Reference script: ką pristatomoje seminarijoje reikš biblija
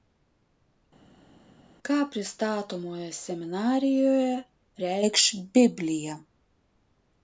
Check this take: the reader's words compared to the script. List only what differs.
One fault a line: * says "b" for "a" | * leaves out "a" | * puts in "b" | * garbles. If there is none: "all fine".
all fine